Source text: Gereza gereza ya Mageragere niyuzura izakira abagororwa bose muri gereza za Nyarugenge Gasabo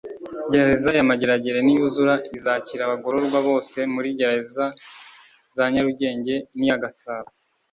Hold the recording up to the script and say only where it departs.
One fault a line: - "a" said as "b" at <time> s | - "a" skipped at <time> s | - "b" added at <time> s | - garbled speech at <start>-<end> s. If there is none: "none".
- "gereza" skipped at 0.9 s
- "n'iya" added at 6.6 s